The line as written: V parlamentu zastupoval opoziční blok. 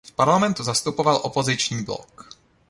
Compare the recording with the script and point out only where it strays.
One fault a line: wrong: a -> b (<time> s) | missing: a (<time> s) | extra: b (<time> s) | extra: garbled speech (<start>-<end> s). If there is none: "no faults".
no faults